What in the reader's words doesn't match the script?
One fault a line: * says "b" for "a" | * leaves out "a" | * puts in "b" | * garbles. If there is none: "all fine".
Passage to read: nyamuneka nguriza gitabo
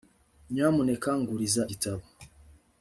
all fine